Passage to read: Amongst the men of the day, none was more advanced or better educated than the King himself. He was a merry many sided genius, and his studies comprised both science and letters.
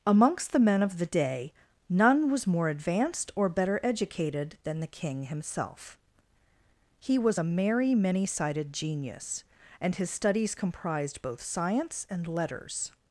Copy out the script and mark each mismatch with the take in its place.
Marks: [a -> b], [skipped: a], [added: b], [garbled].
Amongst the men of the day, none was more advanced or better educated than the King himself. He was a merry many sided genius, and his studies comprised both science and letters.